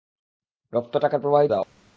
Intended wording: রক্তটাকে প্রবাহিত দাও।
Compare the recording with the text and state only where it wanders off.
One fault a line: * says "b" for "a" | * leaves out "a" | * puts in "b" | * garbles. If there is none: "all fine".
all fine